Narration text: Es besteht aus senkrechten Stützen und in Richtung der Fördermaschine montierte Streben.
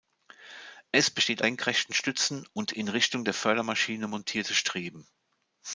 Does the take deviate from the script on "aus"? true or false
true